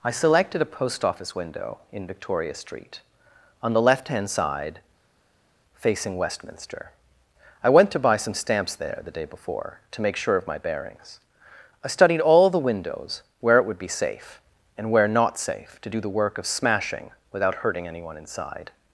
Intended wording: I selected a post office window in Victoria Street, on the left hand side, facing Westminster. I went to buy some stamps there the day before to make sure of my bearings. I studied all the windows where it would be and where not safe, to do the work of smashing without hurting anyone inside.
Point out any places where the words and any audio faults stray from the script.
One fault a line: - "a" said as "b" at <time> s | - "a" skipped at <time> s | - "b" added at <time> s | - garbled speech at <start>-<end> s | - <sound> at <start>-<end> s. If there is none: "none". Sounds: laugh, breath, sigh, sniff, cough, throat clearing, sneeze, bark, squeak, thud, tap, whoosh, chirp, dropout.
- "safe" added at 13.9 s